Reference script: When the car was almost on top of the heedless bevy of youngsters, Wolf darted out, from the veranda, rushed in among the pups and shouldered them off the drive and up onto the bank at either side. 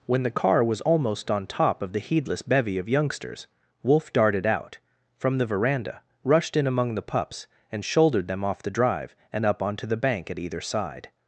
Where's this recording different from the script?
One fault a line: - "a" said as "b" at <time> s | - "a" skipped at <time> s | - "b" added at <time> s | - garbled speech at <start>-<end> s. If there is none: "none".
none